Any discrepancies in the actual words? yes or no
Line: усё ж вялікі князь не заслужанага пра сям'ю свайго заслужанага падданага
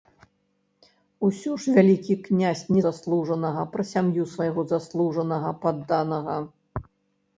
no